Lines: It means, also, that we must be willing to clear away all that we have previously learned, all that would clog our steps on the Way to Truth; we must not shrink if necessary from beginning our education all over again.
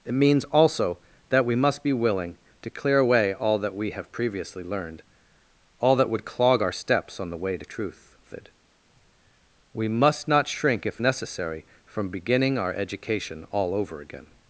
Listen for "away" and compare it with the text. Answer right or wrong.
right